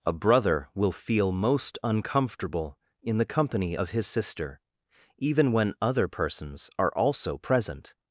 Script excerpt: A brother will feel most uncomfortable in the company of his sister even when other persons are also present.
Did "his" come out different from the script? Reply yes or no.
no